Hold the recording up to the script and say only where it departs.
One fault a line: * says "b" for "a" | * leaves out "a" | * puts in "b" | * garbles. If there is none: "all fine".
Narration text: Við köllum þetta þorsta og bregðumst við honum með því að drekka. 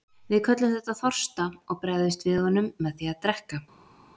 all fine